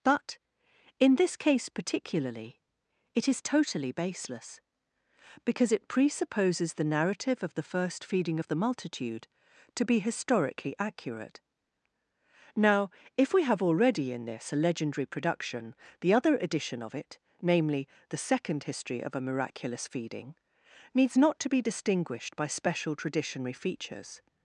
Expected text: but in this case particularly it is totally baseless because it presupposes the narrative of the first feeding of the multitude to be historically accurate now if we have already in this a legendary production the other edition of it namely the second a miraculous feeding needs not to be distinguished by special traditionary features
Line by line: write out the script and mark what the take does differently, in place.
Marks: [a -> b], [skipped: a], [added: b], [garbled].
but in this case particularly it is totally baseless because it presupposes the narrative of the first feeding of the multitude to be historically accurate now if we have already in this a legendary production the other edition of it namely the second [added: history of] a miraculous feeding needs not to be distinguished by special traditionary features